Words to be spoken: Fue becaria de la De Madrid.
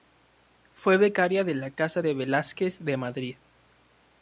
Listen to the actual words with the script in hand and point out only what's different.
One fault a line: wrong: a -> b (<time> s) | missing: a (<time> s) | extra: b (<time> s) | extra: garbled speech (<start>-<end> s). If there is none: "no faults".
extra: Casa de Velázquez (1.7 s)